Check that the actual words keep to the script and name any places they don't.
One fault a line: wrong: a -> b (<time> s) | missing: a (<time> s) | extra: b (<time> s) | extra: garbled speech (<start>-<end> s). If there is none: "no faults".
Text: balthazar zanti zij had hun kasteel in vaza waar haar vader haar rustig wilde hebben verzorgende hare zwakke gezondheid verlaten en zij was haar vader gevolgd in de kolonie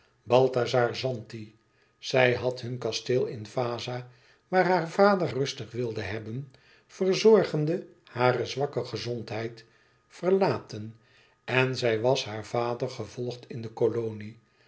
missing: haar (5.3 s)